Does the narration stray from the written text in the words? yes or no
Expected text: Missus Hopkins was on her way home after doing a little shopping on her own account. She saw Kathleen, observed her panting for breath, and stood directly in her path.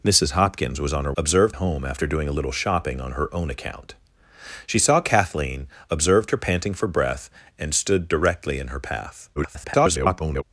yes